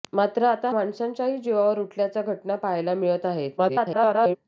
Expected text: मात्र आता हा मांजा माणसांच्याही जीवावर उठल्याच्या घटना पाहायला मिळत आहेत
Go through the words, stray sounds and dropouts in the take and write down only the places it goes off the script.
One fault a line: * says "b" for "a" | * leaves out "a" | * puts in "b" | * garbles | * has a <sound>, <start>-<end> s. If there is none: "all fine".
* leaves out "हा मांजा"
* garbles